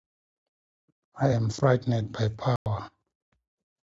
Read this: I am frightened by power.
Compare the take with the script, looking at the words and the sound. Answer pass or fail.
fail